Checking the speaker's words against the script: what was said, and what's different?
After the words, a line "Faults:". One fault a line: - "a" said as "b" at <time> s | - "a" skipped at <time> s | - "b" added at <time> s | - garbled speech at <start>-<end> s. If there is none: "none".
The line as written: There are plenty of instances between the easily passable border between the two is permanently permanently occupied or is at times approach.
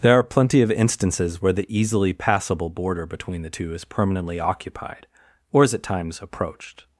There are plenty of instances where the easily passable border between the two is permanently occupied or is at times approached.
Faults:
- "between" said as "where" at 1.4 s
- "permanently" skipped at 4.4 s
- "approach" said as "approached" at 6.2 s